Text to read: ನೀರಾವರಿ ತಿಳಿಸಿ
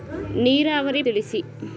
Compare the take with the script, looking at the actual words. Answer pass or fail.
pass